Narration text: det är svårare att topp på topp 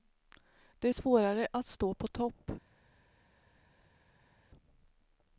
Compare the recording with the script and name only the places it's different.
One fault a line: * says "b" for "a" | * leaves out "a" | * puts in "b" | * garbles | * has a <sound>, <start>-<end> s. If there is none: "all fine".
* says "stå" for "topp"